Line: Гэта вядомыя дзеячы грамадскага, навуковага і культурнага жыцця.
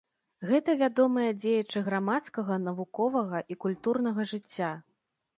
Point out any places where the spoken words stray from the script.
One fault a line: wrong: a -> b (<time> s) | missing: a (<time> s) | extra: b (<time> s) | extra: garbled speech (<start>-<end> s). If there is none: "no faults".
no faults